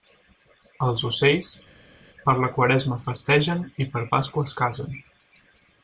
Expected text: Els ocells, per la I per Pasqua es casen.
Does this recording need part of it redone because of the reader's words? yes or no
yes